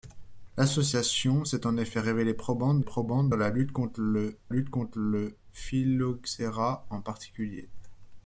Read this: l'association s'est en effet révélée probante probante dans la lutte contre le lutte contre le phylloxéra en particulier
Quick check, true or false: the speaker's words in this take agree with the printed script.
true